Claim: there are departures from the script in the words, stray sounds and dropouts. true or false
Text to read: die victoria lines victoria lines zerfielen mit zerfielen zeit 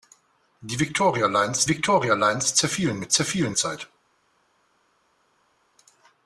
false